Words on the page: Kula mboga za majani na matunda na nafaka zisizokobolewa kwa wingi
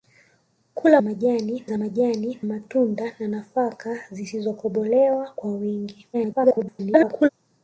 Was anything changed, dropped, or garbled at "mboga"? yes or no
yes